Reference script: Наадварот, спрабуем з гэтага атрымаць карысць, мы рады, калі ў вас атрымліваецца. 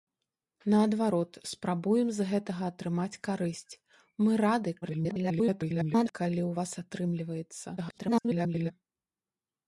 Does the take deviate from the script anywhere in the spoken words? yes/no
yes